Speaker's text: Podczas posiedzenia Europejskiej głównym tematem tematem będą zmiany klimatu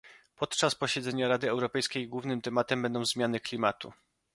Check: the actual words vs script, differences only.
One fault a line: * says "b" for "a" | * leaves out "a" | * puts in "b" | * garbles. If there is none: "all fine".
* puts in "Rady"
* leaves out "tematem"